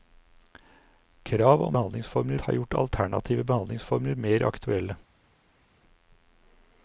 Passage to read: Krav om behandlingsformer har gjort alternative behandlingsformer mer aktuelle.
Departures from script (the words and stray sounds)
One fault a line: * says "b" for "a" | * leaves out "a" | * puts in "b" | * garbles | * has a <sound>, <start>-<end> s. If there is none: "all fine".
all fine